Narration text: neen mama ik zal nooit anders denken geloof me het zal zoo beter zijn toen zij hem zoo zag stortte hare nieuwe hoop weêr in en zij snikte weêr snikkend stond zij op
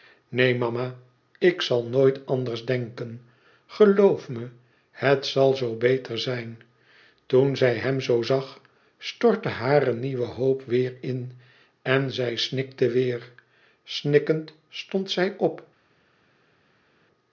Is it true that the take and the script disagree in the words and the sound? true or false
false